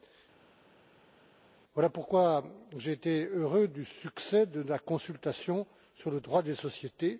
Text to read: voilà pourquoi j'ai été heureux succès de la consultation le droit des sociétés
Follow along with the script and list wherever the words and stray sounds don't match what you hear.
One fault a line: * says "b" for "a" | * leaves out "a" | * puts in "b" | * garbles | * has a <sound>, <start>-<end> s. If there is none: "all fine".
* puts in "du"
* puts in "sur"